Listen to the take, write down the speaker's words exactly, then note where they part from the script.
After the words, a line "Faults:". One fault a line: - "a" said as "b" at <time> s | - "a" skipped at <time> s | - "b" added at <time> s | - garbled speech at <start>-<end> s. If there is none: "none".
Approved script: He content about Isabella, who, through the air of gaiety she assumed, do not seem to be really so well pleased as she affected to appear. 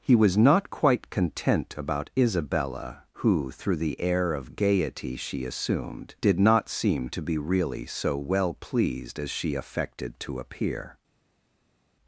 He was not quite content about Isabella, who, through the air of gaiety she assumed, did not seem to be really so well pleased as she affected to appear.
Faults:
- "was not quite" added at 0.1 s
- "do" said as "did" at 6.2 s